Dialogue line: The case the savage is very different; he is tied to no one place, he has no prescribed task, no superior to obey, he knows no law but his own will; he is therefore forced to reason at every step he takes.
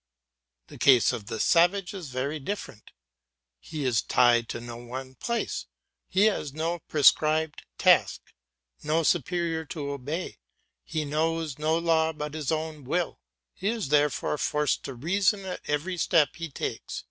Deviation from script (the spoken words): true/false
true